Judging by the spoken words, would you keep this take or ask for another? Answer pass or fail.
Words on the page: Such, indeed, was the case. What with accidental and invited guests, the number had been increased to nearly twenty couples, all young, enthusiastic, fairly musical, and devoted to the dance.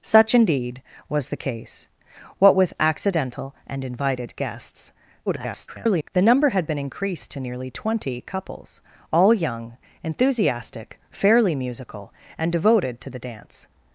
fail